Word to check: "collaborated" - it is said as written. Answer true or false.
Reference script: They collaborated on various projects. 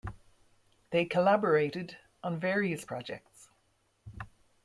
true